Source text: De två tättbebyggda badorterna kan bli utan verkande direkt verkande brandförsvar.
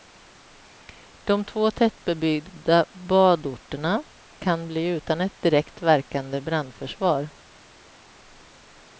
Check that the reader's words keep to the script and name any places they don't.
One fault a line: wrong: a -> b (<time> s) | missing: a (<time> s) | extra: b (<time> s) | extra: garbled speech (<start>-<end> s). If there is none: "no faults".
wrong: verkande -> ett (5.2 s)